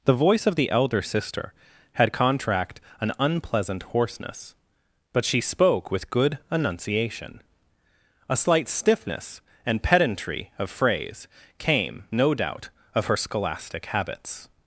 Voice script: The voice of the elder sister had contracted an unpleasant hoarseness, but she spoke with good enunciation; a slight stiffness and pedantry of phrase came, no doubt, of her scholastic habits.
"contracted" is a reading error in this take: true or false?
true